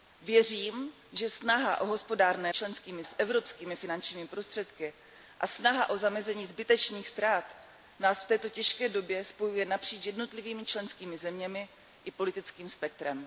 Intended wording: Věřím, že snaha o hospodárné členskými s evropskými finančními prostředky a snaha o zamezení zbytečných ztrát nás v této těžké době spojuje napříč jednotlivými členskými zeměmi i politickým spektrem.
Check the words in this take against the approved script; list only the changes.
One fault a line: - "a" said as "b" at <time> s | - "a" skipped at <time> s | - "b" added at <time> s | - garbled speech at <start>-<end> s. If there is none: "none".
none